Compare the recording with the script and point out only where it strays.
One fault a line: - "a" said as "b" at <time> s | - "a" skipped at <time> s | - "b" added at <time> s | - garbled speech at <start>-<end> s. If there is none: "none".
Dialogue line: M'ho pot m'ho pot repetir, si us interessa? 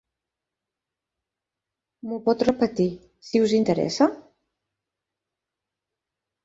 - "m'ho pot" skipped at 2.5 s